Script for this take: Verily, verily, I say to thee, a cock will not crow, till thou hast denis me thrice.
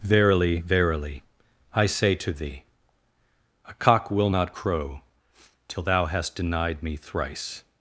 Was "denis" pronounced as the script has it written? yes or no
no